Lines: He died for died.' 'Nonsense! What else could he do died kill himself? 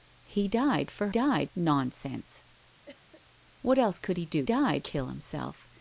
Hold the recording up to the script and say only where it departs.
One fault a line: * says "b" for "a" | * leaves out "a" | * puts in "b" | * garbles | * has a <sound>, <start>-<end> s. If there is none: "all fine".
* has a cough, 2.9-3.2 s